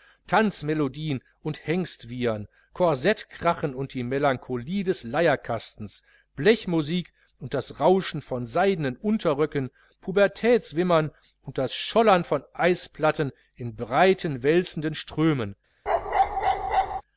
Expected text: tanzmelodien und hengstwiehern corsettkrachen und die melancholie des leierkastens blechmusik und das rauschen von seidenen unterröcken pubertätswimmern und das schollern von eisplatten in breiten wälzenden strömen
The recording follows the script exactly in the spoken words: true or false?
true